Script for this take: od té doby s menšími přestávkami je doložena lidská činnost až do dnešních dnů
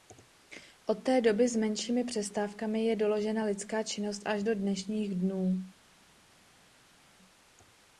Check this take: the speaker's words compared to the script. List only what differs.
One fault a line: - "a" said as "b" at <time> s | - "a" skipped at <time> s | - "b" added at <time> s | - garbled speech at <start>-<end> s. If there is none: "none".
none